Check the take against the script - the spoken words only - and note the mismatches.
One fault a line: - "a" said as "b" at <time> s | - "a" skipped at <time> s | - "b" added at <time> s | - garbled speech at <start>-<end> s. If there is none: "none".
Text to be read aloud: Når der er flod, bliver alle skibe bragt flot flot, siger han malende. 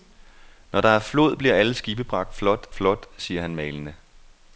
none